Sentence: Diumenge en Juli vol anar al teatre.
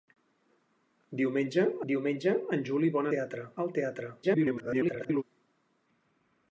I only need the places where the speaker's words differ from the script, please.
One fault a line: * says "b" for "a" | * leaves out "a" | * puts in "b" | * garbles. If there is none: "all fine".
* puts in "diumenge"
* says "teatre" for "anar"
* garbles